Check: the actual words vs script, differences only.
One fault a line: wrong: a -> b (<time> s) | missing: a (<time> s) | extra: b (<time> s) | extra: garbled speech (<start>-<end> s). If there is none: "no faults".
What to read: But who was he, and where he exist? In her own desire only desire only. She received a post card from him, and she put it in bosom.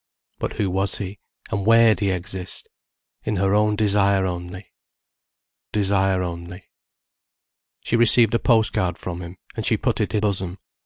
no faults